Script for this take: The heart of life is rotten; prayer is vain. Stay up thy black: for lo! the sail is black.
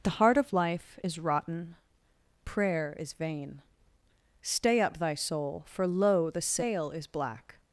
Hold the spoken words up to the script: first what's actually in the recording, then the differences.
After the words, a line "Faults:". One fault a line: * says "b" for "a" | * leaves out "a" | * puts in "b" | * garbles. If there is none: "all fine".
The heart of life is rotten; prayer is vain. Stay up thy soul: for lo! the sail is black.
Faults:
* says "soul" for "black"